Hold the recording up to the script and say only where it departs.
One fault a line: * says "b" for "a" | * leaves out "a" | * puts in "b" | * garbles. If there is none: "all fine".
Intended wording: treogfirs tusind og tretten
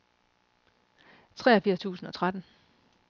all fine